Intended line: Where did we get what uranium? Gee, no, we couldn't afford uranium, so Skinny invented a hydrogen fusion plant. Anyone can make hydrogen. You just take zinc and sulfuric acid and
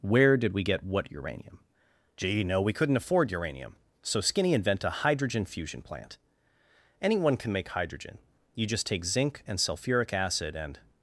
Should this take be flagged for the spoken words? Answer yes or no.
yes